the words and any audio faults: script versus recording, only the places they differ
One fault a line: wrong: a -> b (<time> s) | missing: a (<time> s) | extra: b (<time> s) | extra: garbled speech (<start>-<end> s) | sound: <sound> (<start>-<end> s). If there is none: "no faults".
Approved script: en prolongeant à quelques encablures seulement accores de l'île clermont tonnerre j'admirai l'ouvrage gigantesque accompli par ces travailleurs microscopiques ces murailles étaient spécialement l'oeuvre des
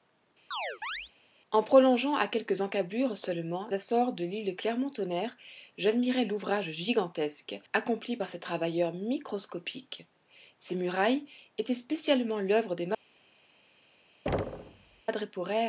sound: chirp (0.5-1.1 s)
sound: thud (14.3-15.0 s)